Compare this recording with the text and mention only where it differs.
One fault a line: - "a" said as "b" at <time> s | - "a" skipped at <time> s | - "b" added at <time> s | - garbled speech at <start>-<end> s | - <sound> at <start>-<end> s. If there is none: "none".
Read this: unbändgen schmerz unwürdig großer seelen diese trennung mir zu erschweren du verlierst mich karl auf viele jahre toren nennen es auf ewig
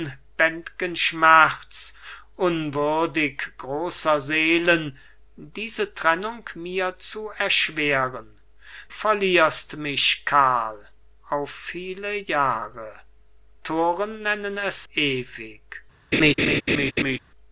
- "du" skipped at 8.3 s
- "auf" skipped at 14.9 s
- laugh at 16.1-17.2 s